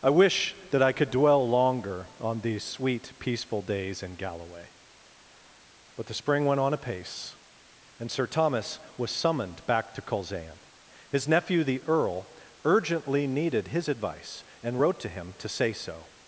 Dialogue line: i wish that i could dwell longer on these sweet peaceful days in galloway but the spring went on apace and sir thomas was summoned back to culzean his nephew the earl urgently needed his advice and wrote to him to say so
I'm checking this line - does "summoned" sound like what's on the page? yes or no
yes